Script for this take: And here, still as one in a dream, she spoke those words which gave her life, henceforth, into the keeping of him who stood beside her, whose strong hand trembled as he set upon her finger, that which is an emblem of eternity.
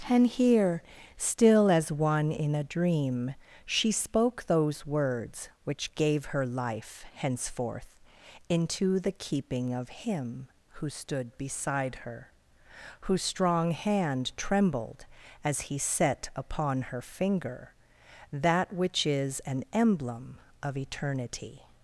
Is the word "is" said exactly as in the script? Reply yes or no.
yes